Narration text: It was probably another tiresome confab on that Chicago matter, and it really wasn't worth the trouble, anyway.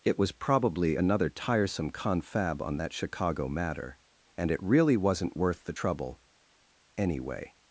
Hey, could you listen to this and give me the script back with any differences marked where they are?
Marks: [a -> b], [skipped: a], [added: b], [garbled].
It was probably another tiresome confab on that Chicago matter, and it really wasn't worth the trouble, anyway.